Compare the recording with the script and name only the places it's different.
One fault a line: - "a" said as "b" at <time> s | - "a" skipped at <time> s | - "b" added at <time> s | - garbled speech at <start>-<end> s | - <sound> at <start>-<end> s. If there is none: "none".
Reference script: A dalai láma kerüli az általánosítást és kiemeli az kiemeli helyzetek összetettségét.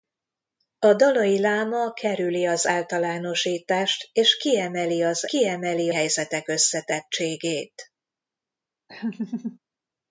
- laugh at 8.9-9.6 s